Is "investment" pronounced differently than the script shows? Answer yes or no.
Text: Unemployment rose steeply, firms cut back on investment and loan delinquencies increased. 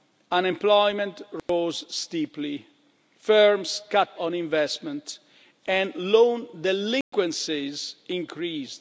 no